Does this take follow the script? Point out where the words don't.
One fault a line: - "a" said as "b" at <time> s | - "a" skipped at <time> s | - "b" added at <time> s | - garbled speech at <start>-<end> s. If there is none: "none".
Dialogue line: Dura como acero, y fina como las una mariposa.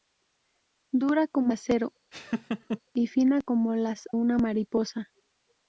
none